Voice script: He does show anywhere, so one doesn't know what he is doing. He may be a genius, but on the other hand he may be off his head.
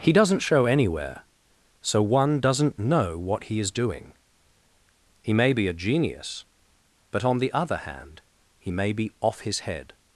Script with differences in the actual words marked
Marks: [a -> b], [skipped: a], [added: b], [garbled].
He [does -> doesn't] show anywhere, so one doesn't know what he is doing. He may be a genius, but on the other hand he may be off his head.